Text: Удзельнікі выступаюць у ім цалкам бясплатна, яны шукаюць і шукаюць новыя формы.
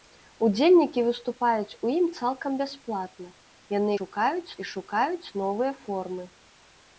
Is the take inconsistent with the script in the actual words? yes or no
no